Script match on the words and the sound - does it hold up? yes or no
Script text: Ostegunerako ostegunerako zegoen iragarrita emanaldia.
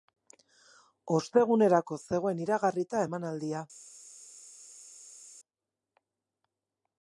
no